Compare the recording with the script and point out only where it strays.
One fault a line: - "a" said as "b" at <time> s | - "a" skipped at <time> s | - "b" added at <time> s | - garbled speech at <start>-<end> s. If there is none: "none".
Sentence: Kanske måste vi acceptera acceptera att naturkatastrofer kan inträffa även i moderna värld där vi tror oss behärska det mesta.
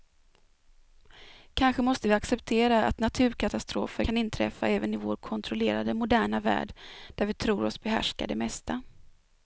- "acceptera" skipped at 2.9 s
- "vår kontrollerade" added at 5.0 s